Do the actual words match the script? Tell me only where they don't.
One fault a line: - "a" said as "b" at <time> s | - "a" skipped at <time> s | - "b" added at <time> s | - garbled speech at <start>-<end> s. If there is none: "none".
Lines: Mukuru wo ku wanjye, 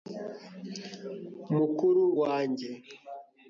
- "wo ku" skipped at 2.0 s